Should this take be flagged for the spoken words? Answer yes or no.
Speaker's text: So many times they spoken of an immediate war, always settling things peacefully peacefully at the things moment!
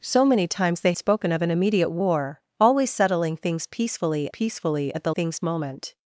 no